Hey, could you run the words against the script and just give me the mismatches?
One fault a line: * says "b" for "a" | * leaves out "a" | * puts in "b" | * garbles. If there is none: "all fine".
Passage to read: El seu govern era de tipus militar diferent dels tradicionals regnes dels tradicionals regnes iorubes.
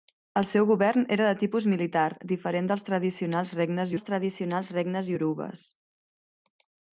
all fine